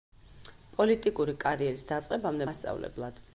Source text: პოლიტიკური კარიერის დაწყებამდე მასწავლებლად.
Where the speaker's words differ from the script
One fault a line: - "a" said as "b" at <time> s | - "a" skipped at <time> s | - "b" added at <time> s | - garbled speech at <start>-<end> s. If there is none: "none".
none